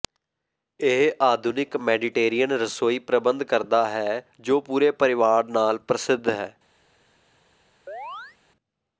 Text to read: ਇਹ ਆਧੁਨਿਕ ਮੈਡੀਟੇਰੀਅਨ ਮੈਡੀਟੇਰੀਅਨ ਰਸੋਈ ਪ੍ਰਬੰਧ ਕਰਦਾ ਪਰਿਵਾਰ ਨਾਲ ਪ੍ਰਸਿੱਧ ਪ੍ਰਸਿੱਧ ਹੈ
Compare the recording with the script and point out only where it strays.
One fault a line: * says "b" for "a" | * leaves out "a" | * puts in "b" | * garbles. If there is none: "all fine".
* leaves out "ਮੈਡੀਟੇਰੀਅਨ"
* puts in "ਹੈ ਜੋ ਪੂਰੇ"
* leaves out "ਪ੍ਰਸਿੱਧ"